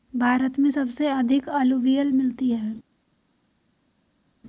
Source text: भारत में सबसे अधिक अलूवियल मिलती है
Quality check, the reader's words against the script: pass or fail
pass